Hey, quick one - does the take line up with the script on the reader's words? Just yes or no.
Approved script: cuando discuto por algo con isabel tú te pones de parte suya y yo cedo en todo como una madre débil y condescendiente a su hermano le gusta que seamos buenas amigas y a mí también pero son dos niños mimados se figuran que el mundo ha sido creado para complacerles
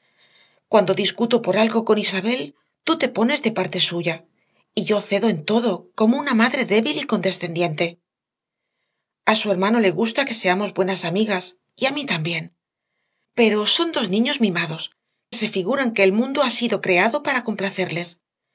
yes